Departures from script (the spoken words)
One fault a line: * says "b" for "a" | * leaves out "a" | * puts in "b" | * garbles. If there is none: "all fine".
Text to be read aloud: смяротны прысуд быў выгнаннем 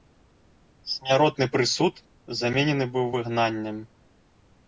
* puts in "заменены"